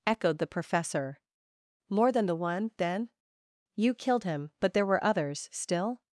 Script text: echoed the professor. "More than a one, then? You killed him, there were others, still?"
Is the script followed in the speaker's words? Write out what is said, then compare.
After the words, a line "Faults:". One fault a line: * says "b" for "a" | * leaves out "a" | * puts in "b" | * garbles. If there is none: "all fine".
echoed the professor. "More than the one, then? You killed him, but there were others, still?"
Faults:
* says "the" for "a"
* puts in "but"